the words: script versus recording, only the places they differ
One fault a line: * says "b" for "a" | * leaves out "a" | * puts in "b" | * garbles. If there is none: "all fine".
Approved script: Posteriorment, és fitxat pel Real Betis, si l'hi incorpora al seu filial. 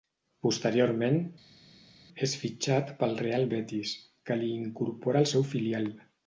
* says "que" for "si"